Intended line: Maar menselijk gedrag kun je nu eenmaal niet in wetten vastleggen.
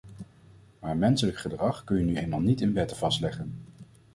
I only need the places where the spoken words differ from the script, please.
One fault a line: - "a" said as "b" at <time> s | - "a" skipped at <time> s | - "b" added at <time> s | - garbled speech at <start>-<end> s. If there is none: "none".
none